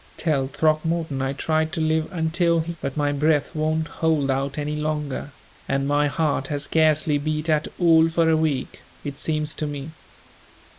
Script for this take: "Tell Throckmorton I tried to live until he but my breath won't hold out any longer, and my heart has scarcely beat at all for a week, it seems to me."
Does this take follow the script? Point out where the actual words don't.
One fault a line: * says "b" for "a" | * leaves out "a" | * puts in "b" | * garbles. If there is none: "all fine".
all fine